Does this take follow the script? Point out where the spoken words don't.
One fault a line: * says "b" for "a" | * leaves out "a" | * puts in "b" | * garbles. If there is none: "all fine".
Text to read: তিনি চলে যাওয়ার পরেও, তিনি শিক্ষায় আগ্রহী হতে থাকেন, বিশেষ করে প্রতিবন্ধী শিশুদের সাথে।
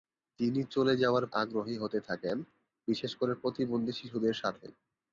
* leaves out "পরেও তিনি শিক্ষায়"